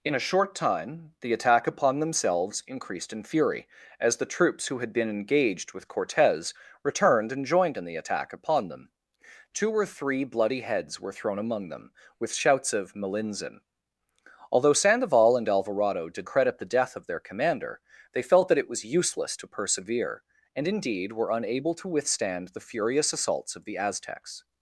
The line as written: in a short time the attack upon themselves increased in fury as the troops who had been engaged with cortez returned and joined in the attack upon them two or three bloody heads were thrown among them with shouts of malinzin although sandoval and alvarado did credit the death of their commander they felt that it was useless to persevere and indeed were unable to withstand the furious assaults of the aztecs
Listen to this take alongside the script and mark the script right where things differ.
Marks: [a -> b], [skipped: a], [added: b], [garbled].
in a short time the attack upon themselves increased in fury as the troops who had been engaged with cortez returned and joined in the attack upon them two or three bloody heads were thrown among them with shouts of malinzin although sandoval and alvarado did credit the death of their commander they felt that it was useless to persevere and indeed were unable to withstand the furious assaults of the aztecs